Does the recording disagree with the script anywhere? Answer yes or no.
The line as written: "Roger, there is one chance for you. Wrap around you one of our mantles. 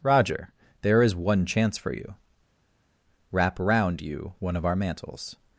no